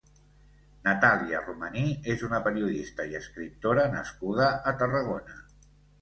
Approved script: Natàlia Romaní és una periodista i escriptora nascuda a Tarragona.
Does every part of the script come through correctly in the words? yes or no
yes